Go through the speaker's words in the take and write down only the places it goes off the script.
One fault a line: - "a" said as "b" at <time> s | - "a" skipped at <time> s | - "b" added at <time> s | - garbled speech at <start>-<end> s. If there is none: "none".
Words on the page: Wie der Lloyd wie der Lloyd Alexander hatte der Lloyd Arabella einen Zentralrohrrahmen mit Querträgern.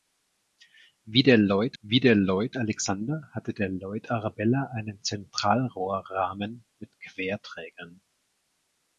none